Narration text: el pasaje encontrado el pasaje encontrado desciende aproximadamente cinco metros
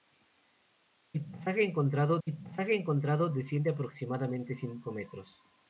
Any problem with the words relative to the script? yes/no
no